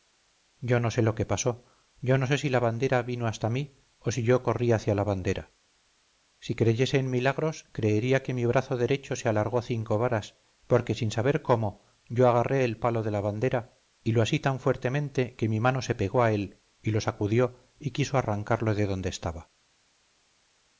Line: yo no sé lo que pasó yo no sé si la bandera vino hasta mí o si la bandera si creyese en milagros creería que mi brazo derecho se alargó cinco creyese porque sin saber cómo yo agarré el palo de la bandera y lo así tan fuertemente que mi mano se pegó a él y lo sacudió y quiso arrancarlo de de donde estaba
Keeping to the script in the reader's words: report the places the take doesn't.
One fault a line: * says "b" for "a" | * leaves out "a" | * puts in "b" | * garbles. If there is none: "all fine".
* puts in "yo corrí hacia"
* says "varas" for "creyese"
* leaves out "de"